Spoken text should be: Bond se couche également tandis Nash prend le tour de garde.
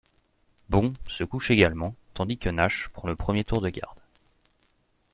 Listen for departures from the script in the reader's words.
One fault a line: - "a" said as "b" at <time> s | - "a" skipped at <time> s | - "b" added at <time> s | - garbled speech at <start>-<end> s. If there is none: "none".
- "que" added at 2.4 s
- "premier" added at 3.1 s